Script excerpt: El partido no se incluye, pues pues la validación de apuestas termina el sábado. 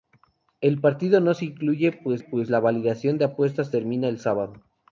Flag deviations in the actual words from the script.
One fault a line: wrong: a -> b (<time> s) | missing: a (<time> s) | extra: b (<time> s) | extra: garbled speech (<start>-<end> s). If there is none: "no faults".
no faults